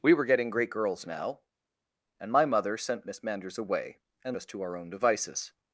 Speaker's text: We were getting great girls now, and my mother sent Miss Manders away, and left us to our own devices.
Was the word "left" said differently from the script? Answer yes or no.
yes